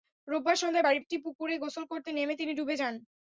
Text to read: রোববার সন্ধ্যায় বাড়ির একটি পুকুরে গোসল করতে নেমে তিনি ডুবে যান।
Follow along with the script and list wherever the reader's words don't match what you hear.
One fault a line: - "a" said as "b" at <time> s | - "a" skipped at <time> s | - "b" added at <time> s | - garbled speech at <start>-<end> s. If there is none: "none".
none